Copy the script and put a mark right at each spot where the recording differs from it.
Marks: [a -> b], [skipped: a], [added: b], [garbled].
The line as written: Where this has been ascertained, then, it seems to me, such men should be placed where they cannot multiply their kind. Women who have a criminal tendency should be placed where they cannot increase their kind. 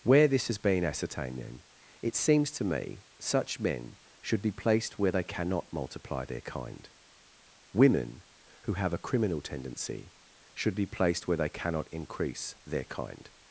Where this has been ascertained, then, it seems to me, such men should be placed where they cannot multiply their kind. Women who have a criminal tendency should be placed where they cannot increase their kind.